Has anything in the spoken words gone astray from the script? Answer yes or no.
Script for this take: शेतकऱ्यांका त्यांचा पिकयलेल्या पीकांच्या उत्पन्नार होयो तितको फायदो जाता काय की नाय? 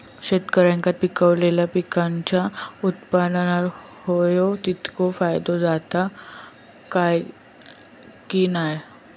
yes